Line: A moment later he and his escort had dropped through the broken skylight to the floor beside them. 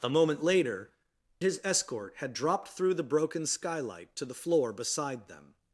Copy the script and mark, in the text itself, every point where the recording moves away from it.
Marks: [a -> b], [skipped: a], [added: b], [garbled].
A moment later [skipped: he and] his escort had dropped through the broken skylight to the floor beside them.